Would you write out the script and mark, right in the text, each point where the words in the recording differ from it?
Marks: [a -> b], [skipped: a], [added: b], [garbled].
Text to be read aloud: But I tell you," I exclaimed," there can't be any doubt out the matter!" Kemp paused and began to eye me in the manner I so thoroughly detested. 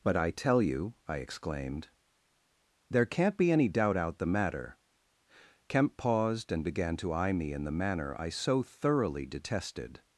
But I tell you," I exclaimed," there can't be any doubt out the matter!" Kemp paused and began to eye me in the manner I so thoroughly detested.